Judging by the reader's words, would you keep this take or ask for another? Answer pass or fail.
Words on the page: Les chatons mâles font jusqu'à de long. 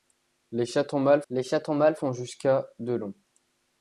fail